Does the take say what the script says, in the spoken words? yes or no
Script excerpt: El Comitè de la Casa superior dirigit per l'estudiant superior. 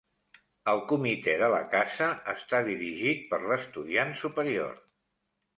no